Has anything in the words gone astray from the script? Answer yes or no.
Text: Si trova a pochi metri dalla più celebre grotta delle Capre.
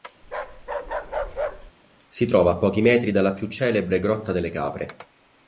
no